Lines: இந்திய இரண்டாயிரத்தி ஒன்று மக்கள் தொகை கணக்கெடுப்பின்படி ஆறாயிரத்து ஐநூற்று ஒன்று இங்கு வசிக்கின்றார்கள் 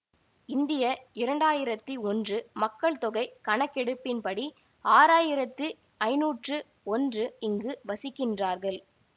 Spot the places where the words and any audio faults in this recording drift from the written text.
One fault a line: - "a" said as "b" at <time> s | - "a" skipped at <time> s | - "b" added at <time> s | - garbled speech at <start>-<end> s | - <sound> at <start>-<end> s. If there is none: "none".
none